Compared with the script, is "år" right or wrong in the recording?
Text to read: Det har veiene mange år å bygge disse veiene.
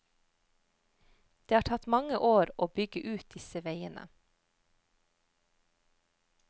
right